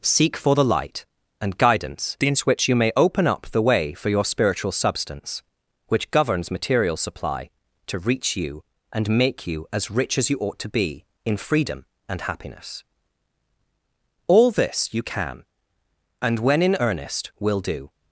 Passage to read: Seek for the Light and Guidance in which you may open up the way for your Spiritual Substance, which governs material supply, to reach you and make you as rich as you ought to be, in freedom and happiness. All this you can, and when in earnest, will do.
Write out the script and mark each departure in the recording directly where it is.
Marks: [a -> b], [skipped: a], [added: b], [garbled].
Seek for the Light and Guidance in which you may open up the way for your Spiritual Substance, which governs material supply, to reach you and make you as rich as you ought to be, in freedom and happiness. All this you can, and when in earnest, will do.